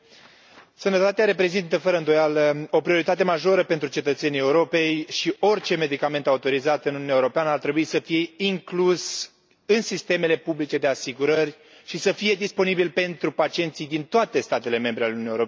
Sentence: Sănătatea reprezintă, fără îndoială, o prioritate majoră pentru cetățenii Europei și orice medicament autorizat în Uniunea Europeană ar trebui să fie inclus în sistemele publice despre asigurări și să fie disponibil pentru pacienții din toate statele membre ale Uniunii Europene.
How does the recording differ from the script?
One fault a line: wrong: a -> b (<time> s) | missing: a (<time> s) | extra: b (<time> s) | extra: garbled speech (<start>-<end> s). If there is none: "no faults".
wrong: despre -> de (10.8 s)